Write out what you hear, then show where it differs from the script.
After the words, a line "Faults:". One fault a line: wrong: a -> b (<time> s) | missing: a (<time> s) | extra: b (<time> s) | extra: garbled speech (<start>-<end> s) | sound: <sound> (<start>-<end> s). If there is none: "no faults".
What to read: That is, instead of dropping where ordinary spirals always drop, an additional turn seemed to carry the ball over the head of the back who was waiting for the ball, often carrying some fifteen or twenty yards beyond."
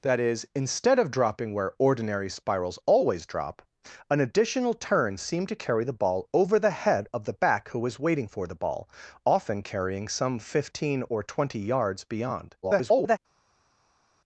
That is, instead of dropping where ordinary spirals always drop, an additional turn seemed to carry the ball over the head of the back who was waiting for the ball, often carrying some fifteen or twenty yards beyond." [garbled]
Faults:
extra: garbled speech (12.6-13.2 s)